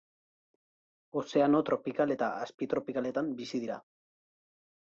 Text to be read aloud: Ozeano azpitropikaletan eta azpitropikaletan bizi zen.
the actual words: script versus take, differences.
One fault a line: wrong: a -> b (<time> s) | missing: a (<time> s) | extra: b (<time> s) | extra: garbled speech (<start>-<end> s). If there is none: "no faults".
wrong: azpitropikaletan -> tropikal (1.7 s)
wrong: zen -> dira (3.6 s)